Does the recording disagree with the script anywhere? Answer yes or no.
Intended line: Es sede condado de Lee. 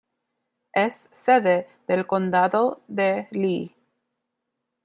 yes